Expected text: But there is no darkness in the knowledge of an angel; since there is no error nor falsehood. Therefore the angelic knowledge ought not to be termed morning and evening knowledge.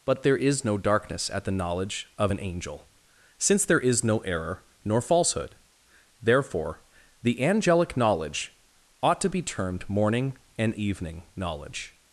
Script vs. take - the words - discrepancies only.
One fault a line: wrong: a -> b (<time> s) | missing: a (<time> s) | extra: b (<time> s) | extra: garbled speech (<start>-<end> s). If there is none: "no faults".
wrong: in -> at (1.3 s)
missing: not (9.2 s)